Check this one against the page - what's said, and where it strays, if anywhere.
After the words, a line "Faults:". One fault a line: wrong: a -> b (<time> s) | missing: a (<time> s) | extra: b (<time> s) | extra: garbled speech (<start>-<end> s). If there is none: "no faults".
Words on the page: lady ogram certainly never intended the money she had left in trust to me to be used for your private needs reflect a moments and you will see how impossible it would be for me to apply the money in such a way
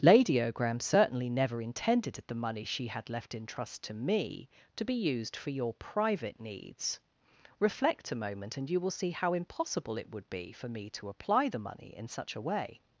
lady ogram certainly never intended the money she had left in trust to me to be used for your private needs reflect a moment and you will see how impossible it would be for me to apply the money in such a way
Faults:
wrong: moments -> moment (8.2 s)